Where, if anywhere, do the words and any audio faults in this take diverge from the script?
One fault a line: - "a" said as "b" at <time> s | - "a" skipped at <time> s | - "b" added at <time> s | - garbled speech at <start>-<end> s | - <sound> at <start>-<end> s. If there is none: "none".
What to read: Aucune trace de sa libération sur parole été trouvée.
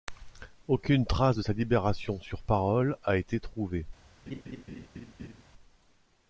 - "a" added at 3.1 s
- laugh at 4.3-5.4 s